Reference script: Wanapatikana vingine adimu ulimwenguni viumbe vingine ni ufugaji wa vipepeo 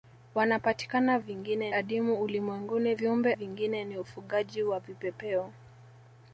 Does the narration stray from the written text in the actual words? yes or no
no